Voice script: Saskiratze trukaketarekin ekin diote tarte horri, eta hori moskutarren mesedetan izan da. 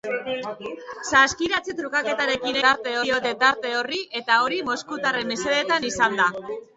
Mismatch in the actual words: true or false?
true